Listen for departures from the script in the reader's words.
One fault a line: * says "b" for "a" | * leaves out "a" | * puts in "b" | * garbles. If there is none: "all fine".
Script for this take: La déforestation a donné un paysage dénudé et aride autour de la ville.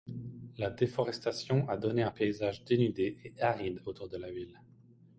all fine